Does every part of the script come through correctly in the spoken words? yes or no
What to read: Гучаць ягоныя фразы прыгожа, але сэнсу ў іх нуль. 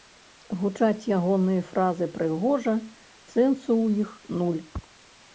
no